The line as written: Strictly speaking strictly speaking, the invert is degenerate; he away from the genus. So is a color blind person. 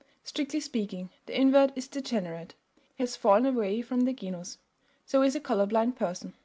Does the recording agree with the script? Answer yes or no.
no